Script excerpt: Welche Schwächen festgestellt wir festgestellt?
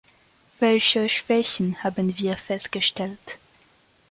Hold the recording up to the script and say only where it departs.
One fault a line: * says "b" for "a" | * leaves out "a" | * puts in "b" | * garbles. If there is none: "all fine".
* says "haben" for "festgestellt"